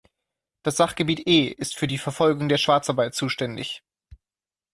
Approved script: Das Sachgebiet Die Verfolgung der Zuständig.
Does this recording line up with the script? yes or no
no